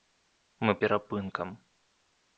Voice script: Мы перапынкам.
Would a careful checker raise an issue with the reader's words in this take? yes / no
no